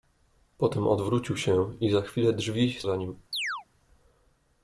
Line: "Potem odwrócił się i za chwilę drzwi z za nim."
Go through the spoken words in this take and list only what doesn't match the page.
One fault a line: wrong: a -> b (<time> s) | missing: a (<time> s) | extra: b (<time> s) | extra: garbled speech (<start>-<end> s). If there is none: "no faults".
no faults